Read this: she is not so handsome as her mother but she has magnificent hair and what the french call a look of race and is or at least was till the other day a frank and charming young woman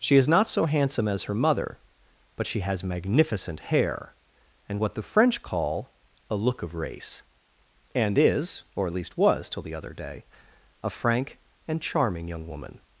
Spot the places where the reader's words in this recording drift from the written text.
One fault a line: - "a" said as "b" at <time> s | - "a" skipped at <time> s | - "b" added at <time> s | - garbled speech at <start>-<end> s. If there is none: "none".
none